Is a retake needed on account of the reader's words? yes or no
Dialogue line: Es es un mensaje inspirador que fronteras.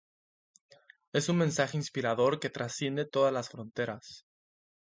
yes